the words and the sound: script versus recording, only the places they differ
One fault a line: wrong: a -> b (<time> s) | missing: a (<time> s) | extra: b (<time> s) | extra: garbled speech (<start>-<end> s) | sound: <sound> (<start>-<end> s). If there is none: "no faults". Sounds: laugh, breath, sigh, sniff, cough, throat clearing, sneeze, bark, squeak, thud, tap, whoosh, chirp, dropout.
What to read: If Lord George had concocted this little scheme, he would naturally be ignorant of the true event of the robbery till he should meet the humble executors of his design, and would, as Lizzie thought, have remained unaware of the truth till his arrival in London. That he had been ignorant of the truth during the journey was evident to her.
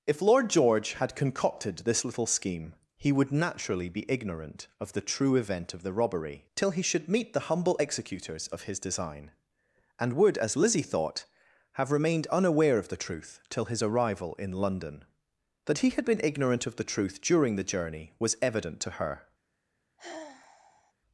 sound: sigh (20.0-20.9 s)